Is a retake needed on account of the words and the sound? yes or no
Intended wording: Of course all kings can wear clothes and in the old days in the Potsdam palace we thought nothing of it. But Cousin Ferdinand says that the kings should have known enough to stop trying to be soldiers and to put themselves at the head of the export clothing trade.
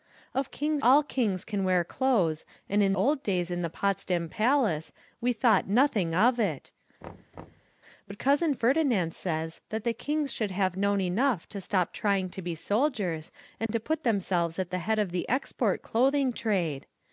yes